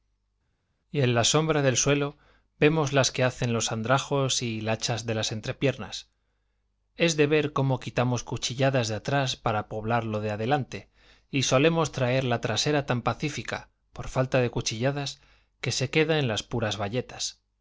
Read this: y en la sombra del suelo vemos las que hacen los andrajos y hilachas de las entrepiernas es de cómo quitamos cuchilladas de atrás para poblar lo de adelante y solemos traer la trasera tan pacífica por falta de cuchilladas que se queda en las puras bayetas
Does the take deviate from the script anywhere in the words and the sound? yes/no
yes